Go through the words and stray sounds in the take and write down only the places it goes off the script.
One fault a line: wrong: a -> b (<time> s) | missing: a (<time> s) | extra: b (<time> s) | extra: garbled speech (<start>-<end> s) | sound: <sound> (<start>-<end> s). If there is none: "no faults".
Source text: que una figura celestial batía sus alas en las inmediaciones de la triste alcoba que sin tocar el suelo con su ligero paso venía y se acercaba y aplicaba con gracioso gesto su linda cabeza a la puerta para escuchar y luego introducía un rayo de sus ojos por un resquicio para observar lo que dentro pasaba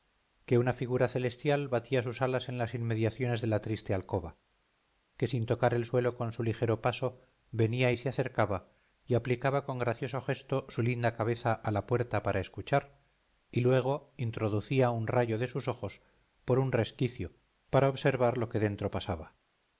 no faults